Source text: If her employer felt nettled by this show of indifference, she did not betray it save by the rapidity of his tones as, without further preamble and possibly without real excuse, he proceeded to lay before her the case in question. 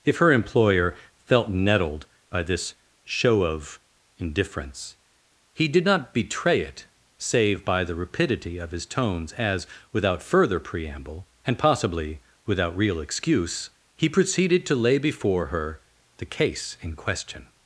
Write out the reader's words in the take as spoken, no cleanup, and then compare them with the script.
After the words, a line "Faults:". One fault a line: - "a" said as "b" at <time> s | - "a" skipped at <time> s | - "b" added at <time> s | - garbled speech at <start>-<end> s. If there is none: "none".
If her employer felt nettled by this show of indifference, he did not betray it save by the rapidity of his tones as, without further preamble and possibly without real excuse, he proceeded to lay before her the case in question.
Faults:
- "she" said as "he" at 5.5 s